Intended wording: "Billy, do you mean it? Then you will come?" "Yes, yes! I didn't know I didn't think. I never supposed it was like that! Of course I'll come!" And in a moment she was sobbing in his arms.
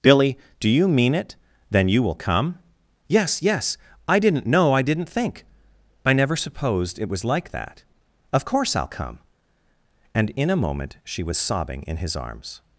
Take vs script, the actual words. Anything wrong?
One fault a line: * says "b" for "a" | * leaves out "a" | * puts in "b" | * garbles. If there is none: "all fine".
all fine